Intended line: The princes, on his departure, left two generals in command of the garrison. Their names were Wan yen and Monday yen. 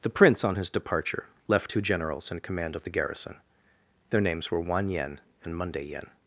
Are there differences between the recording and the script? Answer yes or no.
yes